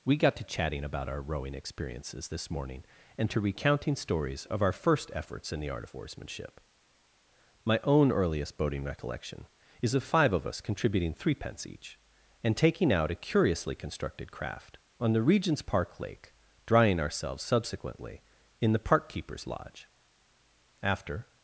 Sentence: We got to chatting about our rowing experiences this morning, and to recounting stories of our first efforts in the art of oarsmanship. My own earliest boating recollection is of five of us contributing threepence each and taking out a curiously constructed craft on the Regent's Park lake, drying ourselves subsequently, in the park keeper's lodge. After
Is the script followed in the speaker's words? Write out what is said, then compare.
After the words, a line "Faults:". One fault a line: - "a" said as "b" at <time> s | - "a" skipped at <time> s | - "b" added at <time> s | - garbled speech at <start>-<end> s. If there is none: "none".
We got to chatting about our rowing experiences this morning, and to recounting stories of our first efforts in the art of oarsmanship. My own earliest boating recollection is of five of us contributing threepence each and taking out a curiously constructed craft on the Regent's Park lake, drying ourselves subsequently, in the park keeper's lodge. After
Faults:
none